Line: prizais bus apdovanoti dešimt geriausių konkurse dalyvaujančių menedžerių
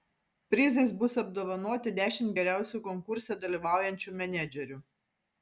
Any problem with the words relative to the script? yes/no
no